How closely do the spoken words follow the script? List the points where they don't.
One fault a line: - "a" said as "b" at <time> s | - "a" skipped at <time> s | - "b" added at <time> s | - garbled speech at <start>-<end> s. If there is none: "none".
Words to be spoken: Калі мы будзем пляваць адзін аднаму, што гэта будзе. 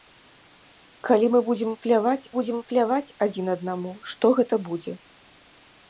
- "будзем пляваць" added at 2.4 s